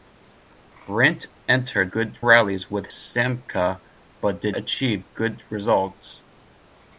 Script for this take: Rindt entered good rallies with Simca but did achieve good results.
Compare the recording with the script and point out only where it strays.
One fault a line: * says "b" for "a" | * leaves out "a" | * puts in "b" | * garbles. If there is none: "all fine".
all fine